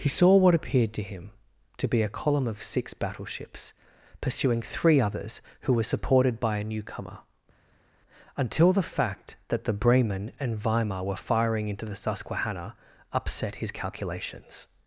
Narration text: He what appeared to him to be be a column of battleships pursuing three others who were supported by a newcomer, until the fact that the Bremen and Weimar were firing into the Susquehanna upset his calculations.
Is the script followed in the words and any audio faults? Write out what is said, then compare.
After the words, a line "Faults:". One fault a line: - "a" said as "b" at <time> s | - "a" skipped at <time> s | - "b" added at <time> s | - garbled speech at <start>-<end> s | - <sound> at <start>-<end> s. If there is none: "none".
He saw what appeared to him to be a column of six battleships pursuing three others who were supported by a newcomer, until the fact that the Bremen and Weimar were firing into the Susquehanna upset his calculations.
Faults:
- "saw" added at 0.1 s
- "be" skipped at 2.0 s
- "six" added at 2.6 s